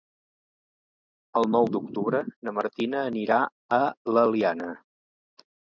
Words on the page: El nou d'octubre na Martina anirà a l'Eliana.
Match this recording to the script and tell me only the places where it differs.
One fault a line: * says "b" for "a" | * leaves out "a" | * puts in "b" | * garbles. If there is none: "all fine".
all fine